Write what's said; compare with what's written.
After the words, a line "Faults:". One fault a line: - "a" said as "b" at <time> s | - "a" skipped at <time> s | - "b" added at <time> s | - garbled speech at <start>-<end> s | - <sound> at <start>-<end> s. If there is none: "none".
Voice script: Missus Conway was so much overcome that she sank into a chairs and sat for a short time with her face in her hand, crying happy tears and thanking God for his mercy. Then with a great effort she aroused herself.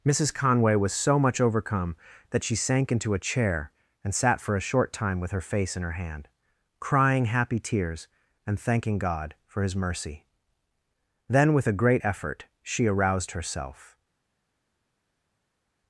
Missus Conway was so much overcome that she sank into a chair and sat for a short time with her face in her hand, crying happy tears and thanking God for his mercy. Then with a great effort she aroused herself.
Faults:
- "chairs" said as "chair" at 3.2 s